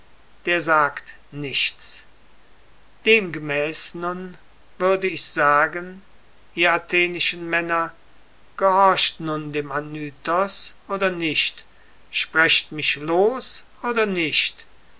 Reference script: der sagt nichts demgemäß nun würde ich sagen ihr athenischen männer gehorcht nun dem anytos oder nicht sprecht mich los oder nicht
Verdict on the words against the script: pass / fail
pass